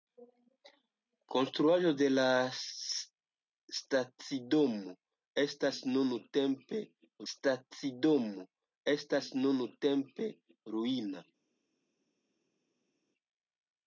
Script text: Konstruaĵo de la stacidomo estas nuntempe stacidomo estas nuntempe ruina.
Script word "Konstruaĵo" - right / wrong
right